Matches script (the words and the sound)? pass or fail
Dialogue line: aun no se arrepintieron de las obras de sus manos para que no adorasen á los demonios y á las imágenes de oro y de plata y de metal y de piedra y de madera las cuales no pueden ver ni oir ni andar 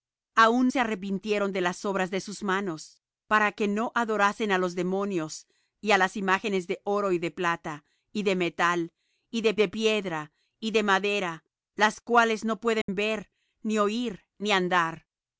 fail